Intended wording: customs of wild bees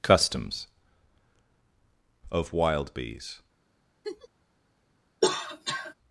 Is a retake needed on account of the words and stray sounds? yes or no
yes